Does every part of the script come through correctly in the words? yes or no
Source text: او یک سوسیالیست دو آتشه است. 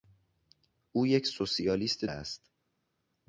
no